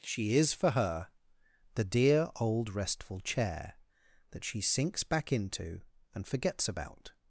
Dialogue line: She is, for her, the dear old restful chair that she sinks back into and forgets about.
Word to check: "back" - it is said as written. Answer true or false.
true